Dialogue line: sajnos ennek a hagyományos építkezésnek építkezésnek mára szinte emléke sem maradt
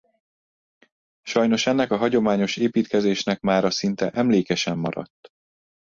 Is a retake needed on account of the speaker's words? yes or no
yes